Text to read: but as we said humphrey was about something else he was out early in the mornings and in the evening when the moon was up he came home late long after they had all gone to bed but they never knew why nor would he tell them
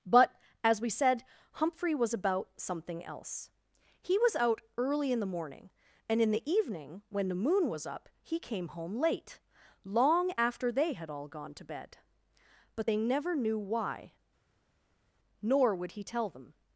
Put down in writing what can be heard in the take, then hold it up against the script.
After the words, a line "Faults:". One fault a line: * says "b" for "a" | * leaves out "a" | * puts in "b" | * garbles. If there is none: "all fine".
but as we said humphrey was about something else he was out early in the morning and in the evening when the moon was up he came home late long after they had all gone to bed but they never knew why nor would he tell them
Faults:
* says "morning" for "mornings"